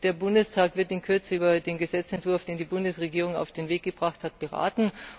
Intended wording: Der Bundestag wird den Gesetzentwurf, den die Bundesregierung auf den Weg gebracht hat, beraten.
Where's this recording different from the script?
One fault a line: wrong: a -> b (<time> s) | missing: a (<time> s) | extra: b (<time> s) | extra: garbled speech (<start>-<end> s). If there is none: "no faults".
extra: in Kürze über (0.9 s)